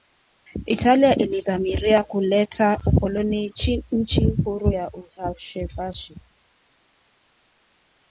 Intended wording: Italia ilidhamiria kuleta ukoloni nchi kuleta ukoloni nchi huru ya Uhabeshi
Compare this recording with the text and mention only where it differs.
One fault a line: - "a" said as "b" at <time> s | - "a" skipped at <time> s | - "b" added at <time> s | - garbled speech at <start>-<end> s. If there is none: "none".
- "kuleta ukoloni nchi" skipped at 4.3 s